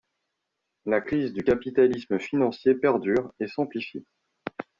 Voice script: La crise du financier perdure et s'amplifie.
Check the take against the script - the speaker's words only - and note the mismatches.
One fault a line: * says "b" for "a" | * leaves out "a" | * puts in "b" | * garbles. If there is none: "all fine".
* puts in "capitalisme"